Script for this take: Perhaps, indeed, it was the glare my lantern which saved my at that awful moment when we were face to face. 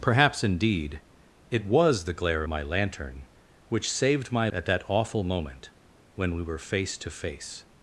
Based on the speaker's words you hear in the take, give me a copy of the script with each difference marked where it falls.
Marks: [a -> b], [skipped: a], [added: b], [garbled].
Perhaps, indeed, it was the glare my lantern which saved my at that awful moment when we were face to face.